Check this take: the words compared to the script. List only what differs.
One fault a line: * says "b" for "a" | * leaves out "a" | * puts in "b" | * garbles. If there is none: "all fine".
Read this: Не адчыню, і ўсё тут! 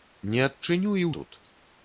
* leaves out "ўсё"